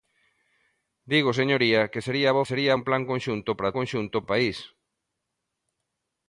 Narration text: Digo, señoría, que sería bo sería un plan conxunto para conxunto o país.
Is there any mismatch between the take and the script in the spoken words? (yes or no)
no